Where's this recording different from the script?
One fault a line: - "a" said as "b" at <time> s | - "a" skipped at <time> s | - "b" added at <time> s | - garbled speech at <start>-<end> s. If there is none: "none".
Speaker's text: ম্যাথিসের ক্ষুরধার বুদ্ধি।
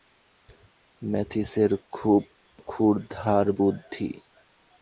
- "খুব" added at 1.9 s